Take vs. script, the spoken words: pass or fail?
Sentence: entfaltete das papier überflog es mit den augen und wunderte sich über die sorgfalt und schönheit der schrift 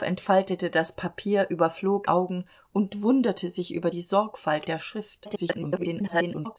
fail